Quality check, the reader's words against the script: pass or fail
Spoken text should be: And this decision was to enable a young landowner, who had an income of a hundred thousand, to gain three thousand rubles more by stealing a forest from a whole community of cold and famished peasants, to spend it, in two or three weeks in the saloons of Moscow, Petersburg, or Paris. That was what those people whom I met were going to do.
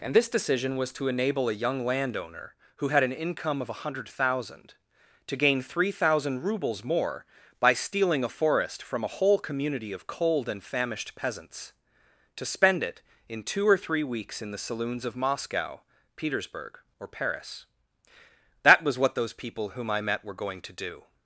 pass